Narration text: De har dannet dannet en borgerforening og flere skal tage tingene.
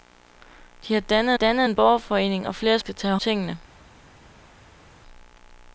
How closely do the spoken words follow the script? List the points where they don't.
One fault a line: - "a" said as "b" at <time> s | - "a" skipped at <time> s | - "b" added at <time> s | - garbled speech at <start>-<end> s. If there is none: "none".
none